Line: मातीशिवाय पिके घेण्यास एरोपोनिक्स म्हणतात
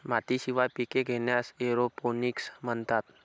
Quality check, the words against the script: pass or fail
pass